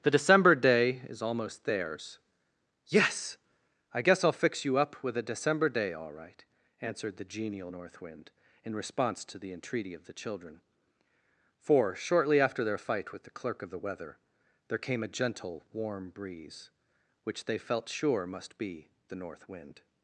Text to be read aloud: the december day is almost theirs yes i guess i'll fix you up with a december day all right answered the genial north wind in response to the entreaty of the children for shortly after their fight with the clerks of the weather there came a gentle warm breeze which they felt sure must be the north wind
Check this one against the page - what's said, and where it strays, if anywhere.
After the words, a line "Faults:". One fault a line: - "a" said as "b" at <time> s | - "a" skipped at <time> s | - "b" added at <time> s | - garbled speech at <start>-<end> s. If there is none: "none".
the december day is almost theirs yes i guess i'll fix you up with a december day all right answered the genial north wind in response to the entreaty of the children for shortly after their fight with the clerk of the weather there came a gentle warm breeze which they felt sure must be the north wind
Faults:
- "clerks" said as "clerk" at 13.3 s